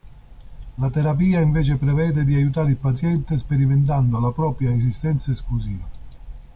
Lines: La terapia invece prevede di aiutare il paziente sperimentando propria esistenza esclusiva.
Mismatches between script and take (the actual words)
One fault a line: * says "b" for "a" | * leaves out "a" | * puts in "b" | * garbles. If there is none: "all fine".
* puts in "la"